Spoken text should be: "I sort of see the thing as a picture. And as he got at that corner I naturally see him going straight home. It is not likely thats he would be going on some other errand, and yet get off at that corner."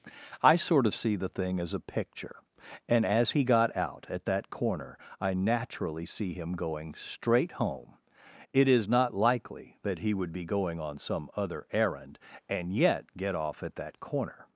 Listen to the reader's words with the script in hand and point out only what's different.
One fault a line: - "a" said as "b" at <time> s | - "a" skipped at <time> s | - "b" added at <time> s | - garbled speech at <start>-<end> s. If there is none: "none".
- "out" added at 3.8 s
- "thats" said as "that" at 9.8 s